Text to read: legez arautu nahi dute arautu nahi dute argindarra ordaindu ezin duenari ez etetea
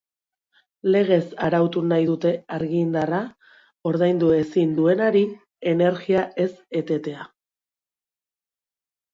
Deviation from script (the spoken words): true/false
true